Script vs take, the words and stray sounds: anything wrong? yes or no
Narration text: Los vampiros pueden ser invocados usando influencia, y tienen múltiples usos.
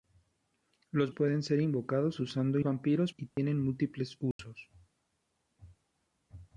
yes